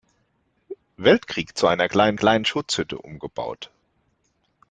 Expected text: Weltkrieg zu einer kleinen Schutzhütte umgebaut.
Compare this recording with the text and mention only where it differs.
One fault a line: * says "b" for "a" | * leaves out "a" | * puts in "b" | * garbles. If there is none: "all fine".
* puts in "kleinen"